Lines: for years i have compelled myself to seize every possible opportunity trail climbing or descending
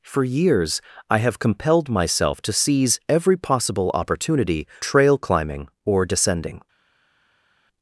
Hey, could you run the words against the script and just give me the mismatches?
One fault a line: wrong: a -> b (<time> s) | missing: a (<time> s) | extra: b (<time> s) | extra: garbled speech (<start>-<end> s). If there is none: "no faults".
no faults